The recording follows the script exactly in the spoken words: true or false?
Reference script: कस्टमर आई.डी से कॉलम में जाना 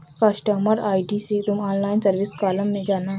false